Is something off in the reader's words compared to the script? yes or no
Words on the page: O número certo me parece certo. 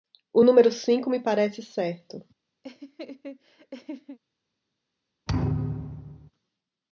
yes